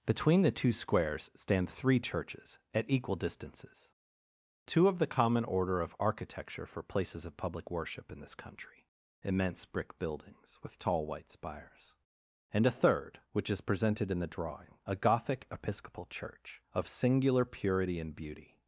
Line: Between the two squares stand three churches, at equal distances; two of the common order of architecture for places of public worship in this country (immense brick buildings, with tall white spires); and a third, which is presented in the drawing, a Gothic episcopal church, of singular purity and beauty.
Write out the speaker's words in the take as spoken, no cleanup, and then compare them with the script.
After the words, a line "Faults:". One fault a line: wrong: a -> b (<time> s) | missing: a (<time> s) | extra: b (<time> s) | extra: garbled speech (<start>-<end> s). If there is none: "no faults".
Between the two squares stand three churches, at equal distances; two of the common order of architecture for places of public worship in this country (immense brick buildings, with tall white spires); and a third, which is presented in the drawing, a Gothic episcopal church, of singular purity and beauty.
Faults:
no faults